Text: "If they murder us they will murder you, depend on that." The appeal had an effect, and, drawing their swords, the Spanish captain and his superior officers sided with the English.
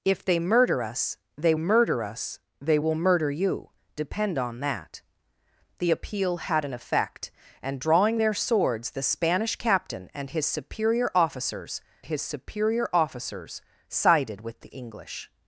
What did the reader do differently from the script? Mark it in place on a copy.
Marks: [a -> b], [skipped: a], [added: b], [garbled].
"If they murder us they [added: murder us they] will murder you, depend on that." The appeal had an effect, and, drawing their swords, the Spanish captain and his superior officers [added: his superior officers] sided with the English.